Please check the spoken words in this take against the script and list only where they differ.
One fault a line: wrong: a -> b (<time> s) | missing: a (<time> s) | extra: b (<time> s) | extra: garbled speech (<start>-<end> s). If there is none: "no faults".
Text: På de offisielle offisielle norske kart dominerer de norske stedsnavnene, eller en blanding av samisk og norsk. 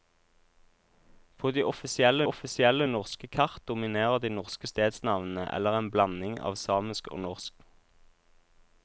no faults